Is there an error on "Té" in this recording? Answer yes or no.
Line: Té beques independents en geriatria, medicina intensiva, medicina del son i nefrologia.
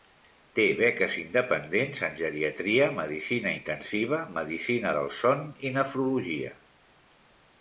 no